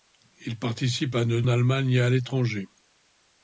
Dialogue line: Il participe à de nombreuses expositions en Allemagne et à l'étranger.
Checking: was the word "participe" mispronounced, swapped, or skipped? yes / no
no